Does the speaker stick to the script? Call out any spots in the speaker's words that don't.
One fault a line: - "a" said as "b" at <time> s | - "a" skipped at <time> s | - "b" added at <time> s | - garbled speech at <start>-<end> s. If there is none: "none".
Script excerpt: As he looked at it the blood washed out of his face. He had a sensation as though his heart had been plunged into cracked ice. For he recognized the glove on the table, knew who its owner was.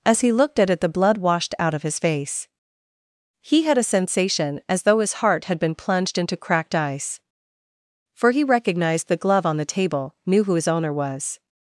- "its" said as "his" at 10.5 s